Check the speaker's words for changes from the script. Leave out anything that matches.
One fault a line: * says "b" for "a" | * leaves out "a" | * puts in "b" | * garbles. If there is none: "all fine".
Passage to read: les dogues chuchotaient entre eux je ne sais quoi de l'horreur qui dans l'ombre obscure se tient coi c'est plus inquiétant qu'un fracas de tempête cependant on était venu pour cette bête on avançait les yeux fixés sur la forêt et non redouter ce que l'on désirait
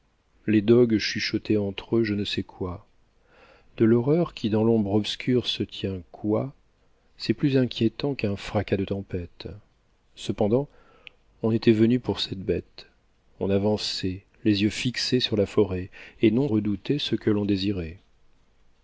all fine